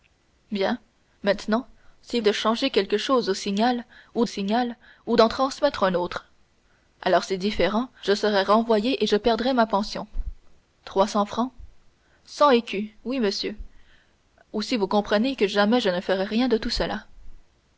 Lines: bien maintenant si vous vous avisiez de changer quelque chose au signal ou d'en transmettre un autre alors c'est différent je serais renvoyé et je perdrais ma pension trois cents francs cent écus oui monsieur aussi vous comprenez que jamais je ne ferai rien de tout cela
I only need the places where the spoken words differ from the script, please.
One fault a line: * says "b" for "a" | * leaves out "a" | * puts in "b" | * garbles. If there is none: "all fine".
* leaves out "vous vous avisiez"
* puts in "signal ou"